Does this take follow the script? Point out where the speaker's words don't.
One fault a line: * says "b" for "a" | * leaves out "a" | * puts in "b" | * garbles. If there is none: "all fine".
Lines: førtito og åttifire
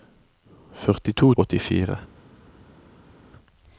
all fine